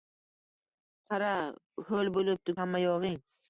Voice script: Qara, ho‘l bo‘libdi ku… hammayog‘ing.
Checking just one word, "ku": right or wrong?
wrong